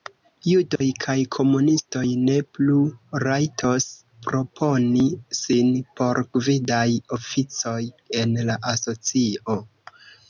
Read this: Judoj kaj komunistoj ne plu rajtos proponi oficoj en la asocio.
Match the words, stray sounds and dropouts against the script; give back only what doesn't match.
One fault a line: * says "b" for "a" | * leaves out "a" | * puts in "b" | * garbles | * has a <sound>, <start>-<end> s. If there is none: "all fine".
* has a dropout, 0.8-0.8 s
* puts in "sin por gvidaj"